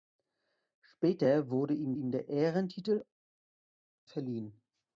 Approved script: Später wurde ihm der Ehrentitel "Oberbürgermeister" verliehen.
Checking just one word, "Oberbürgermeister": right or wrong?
wrong